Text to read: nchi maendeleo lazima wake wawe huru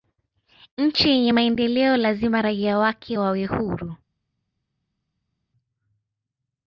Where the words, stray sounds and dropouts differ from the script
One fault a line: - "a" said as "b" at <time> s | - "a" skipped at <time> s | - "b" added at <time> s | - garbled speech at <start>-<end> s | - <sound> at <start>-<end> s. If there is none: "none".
- "yenye" added at 1.1 s
- "raia" added at 2.4 s